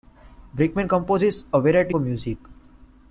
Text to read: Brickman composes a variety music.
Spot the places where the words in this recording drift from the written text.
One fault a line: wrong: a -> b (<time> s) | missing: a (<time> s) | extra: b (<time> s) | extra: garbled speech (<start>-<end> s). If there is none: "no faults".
no faults